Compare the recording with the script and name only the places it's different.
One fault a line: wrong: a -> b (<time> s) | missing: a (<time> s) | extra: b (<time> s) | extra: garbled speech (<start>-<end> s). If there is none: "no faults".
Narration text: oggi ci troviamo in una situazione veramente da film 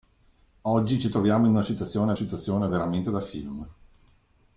extra: situazione (2.1 s)